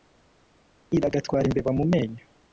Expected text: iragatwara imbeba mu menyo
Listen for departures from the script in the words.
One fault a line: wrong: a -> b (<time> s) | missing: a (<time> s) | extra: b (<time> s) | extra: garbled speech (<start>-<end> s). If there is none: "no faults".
no faults